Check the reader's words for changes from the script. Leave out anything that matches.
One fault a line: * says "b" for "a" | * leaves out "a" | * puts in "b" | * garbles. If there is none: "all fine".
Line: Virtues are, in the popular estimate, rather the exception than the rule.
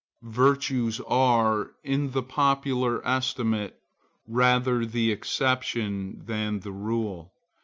all fine